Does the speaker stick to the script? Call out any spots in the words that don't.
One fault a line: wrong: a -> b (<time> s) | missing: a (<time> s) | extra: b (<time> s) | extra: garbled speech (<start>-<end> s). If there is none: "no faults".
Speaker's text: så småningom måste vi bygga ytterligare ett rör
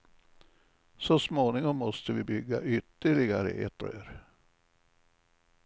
no faults